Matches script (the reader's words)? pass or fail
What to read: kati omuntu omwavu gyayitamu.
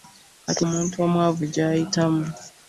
pass